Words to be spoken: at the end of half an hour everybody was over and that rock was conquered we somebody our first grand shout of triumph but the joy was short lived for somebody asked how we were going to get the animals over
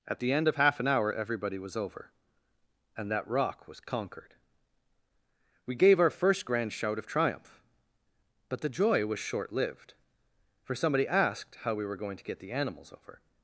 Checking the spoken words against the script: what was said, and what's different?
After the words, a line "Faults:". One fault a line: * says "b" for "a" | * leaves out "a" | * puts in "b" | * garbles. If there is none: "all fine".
at the end of half an hour everybody was over and that rock was conquered we gave our first grand shout of triumph but the joy was short lived for somebody asked how we were going to get the animals over
Faults:
* says "gave" for "somebody"